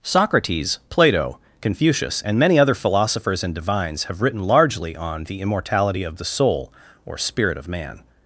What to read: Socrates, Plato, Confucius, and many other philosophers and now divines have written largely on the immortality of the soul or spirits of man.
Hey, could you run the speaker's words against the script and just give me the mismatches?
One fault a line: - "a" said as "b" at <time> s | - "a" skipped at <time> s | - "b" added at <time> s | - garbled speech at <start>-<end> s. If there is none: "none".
- "now" skipped at 3.5 s
- "spirits" said as "spirit" at 7.2 s